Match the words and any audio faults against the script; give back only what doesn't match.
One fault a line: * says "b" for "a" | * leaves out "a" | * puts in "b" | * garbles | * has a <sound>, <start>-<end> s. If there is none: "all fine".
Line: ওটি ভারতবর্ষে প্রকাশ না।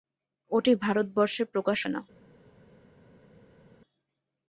all fine